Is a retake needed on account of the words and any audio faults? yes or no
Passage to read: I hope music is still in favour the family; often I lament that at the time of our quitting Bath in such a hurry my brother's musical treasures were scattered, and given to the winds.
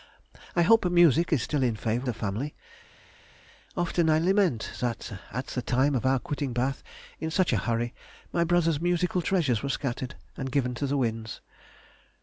no